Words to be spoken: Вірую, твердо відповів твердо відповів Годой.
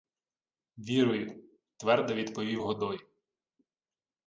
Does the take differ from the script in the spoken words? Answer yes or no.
yes